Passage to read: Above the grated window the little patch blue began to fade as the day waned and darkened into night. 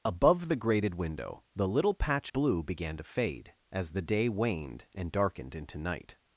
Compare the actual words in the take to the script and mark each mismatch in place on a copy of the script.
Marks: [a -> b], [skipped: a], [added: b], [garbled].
Above the grated window the little patch blue began to fade as the day waned and darkened into night.